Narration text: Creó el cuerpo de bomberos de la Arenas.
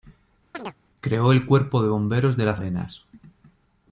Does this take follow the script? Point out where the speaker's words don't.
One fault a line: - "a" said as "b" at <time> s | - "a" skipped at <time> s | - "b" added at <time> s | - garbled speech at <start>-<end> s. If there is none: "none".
none